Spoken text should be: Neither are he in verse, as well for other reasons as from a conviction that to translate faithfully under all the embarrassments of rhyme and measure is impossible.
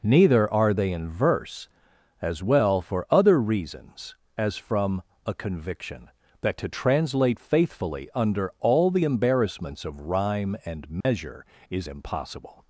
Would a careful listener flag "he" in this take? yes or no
yes